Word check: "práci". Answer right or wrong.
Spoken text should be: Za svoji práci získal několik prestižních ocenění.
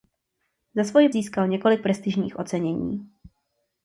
wrong